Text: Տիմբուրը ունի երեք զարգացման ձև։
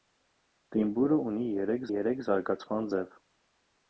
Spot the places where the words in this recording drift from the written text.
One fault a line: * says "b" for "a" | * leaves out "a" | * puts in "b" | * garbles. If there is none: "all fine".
* puts in "երեք"